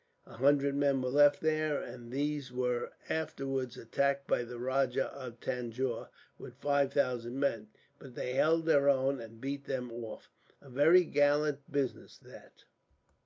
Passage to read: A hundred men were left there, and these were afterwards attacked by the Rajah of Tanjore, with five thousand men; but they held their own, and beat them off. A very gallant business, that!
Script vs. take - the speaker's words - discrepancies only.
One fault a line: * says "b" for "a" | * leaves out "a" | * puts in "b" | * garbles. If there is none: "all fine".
all fine